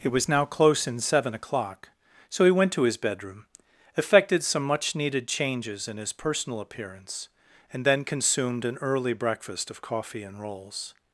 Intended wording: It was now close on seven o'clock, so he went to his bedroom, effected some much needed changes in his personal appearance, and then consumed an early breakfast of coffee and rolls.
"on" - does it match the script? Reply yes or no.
no